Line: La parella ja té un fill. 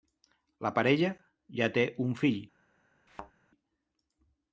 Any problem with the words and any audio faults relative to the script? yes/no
yes